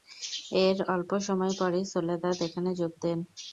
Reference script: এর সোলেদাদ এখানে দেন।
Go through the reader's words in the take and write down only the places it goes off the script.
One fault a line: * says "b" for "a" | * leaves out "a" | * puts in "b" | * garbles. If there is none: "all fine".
* puts in "অল্প সময় পরই"
* puts in "যোগ"